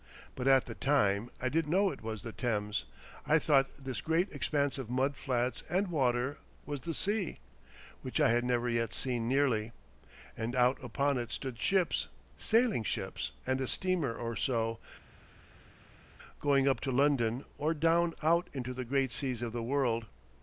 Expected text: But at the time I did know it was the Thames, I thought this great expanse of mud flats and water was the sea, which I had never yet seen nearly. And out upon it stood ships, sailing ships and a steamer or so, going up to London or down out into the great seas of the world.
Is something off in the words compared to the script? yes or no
no